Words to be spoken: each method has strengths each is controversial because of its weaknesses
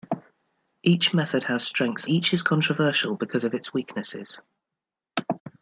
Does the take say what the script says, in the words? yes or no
yes